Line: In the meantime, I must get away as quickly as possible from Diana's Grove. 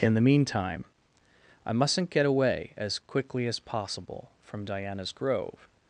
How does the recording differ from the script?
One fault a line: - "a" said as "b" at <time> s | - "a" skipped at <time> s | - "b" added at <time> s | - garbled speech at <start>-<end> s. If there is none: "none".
- "must" said as "mustn't" at 1.7 s